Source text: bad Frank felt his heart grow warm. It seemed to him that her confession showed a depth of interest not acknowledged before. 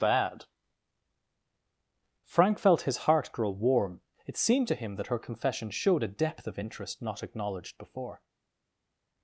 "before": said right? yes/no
yes